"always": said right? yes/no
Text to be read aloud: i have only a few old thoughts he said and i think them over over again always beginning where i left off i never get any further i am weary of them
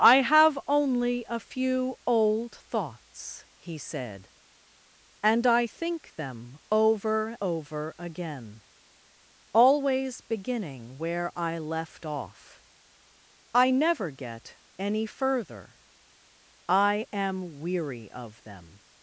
yes